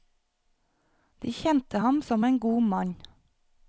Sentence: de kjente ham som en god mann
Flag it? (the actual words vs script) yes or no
no